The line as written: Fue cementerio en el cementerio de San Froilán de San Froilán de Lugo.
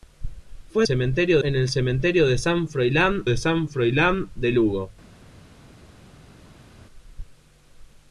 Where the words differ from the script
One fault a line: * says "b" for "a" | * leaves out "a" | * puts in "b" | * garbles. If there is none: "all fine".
all fine